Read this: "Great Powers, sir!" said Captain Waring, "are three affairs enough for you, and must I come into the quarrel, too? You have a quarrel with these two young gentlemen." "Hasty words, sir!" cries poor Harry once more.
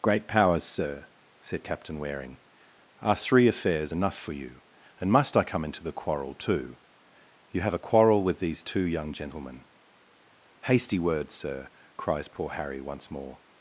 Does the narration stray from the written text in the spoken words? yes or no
no